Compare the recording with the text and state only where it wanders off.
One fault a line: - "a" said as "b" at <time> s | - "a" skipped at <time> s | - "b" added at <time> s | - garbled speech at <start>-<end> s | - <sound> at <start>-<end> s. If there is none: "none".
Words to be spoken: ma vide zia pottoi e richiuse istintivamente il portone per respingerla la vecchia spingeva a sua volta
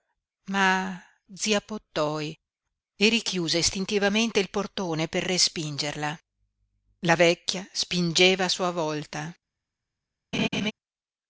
- "vide" skipped at 1.0 s
- laugh at 10.3-10.7 s